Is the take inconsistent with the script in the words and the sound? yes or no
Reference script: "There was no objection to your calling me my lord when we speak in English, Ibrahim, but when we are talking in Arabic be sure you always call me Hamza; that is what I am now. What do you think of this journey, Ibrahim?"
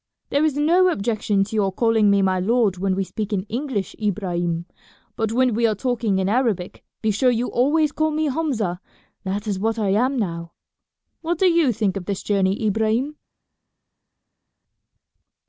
yes